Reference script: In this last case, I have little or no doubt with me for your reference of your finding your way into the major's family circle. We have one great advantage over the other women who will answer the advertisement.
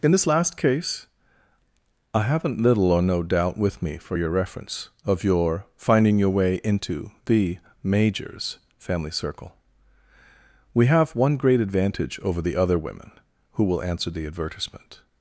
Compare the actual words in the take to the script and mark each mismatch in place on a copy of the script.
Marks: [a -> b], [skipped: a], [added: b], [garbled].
In this last case, I [have -> haven't] little or no doubt with me for your reference of your finding your way into the major's family circle. We have one great advantage over the other women who will answer the advertisement.